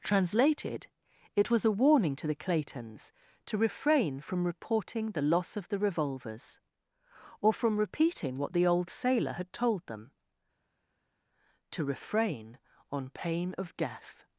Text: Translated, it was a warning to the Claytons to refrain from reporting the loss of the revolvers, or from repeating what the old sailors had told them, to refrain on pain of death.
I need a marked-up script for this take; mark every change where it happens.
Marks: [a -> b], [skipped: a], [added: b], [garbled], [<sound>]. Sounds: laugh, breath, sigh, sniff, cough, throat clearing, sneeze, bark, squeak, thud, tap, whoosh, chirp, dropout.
Translated, it was a warning to the Claytons to refrain from reporting the loss of the revolvers, or from repeating what the old [sailors -> sailor] had told them, to refrain on pain of death.